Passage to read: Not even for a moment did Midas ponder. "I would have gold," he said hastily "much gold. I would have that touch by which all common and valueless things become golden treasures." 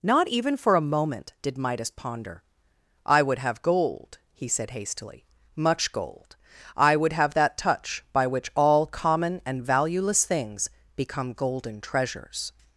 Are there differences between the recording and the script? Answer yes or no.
no